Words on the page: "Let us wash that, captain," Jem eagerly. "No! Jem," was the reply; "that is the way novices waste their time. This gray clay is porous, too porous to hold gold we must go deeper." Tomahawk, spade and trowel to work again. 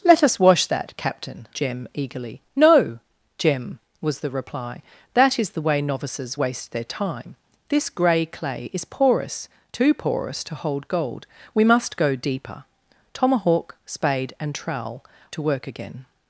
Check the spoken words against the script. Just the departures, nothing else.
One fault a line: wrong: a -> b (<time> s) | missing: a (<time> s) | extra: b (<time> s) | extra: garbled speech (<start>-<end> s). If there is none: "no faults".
no faults